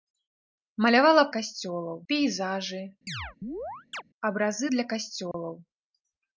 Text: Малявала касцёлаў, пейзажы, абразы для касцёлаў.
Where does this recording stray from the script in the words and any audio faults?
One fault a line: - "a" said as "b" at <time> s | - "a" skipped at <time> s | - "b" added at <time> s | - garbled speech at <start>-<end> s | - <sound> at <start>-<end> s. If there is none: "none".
- chirp at 3.1-4.0 s
- dropout at 5.3-5.3 s